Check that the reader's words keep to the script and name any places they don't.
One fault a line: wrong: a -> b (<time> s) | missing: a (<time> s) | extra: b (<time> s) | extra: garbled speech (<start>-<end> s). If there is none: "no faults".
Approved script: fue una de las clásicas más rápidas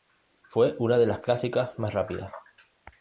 no faults